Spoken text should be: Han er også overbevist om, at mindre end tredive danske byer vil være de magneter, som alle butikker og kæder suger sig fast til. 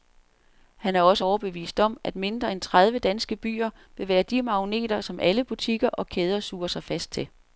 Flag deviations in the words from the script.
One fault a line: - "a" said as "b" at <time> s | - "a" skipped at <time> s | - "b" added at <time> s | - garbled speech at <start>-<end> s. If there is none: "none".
none